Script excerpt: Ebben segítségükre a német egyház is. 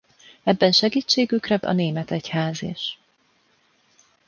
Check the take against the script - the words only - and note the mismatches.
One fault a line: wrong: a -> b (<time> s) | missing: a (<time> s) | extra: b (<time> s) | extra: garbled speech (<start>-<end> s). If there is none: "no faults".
no faults